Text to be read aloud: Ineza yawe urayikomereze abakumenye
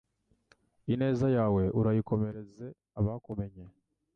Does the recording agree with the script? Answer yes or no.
yes